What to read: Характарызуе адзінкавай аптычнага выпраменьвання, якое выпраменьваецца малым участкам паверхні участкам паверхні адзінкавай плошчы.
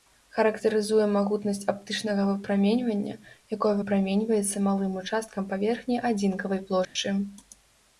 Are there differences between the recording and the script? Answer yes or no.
yes